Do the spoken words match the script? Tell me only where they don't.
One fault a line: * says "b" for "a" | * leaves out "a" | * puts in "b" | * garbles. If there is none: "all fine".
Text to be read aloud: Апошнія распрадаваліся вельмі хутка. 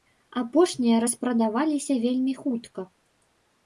all fine